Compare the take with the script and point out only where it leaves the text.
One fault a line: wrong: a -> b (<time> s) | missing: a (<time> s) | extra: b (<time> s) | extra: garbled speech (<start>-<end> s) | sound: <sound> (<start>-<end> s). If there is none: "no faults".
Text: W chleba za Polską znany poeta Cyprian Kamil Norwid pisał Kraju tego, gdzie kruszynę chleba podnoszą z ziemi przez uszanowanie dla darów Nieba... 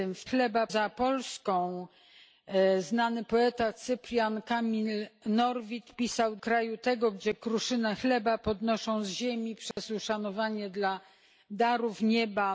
sound: dropout (9.7-9.8 s)